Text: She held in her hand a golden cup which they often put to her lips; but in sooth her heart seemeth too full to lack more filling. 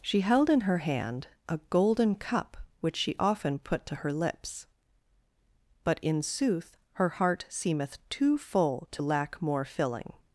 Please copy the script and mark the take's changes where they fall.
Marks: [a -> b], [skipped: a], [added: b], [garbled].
She held in her hand a golden cup which [they -> she] often put to her lips; but in sooth her heart seemeth too full to lack more filling.